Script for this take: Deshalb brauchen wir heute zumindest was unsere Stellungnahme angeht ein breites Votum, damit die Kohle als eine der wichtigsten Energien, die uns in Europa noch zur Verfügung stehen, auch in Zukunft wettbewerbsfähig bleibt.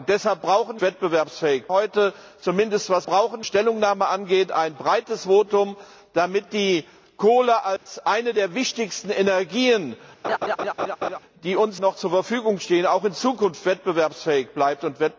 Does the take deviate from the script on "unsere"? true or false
true